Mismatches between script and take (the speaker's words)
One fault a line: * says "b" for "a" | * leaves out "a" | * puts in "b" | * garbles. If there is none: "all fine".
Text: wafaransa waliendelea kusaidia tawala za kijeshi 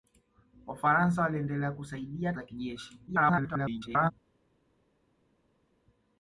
* leaves out "tawala"
* garbles